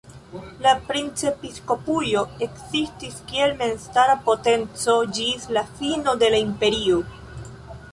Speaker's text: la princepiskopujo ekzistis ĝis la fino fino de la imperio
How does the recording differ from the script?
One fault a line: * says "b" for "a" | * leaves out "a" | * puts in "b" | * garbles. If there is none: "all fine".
* puts in "kiel memstara potenco"
* leaves out "fino"